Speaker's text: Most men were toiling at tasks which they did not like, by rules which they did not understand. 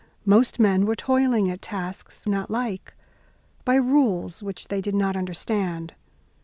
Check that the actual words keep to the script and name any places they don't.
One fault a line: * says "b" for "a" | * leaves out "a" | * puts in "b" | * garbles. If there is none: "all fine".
* leaves out "which they did"